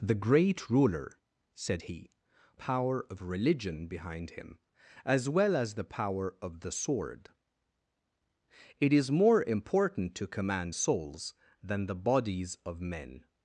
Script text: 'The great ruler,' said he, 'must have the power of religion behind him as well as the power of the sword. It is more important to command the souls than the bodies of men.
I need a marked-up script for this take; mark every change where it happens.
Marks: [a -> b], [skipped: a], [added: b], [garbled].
'The great ruler,' said he, [skipped: 'must have the] power of religion behind him as well as the power of the sword. It is more important to command [skipped: the] souls than the bodies of men.